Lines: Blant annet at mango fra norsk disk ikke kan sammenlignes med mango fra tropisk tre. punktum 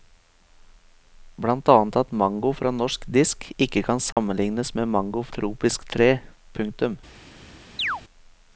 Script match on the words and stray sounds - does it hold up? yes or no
no